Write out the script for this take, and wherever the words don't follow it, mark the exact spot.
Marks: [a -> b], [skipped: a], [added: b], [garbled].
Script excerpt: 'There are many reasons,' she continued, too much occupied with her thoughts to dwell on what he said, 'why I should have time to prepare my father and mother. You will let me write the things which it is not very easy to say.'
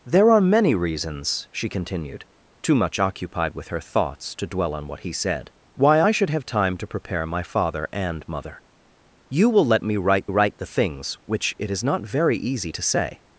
'There are many reasons,' she continued, too much occupied with her thoughts to dwell on what he said, 'why I should have time to prepare my father and mother. You will let me write [added: write] the things which it is not very easy to say.'